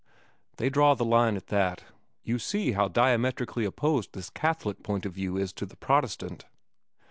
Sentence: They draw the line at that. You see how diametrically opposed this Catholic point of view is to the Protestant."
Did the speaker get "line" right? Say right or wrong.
right